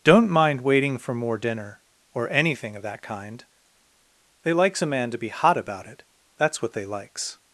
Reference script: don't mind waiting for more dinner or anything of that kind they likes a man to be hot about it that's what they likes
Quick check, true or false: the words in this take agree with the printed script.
true